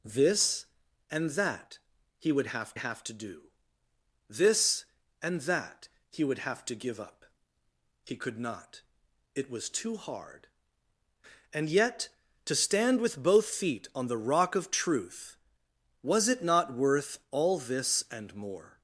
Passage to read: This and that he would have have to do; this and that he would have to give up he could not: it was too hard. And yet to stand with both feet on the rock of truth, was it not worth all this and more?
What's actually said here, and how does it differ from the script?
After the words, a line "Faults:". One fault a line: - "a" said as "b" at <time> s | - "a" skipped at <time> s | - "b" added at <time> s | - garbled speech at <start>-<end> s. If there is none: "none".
This and that he would have have to do; this and that he would have to give up he could not: it was too hard. And yet to stand with both feet on the rock of truth, was it not worth all this and more?
Faults:
none